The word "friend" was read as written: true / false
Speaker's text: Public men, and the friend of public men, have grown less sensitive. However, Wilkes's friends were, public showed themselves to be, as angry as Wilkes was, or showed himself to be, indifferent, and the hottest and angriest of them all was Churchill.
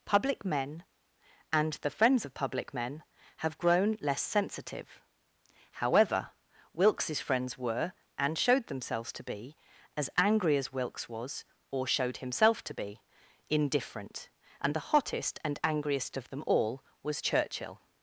false